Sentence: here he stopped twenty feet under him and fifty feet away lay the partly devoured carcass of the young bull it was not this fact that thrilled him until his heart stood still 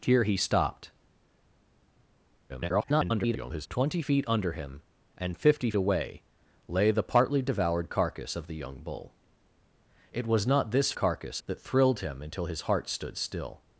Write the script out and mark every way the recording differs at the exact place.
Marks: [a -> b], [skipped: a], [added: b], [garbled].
here he stopped [garbled] twenty feet under him and fifty [skipped: feet] away lay the partly devoured carcass of the young bull it was not this [fact -> carcass] that thrilled him until his heart stood still